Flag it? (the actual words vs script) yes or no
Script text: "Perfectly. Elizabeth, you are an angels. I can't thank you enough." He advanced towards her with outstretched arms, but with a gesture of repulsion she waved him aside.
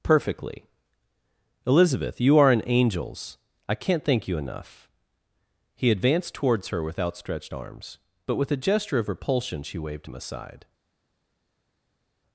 no